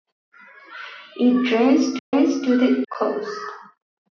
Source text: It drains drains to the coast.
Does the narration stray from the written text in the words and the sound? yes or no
yes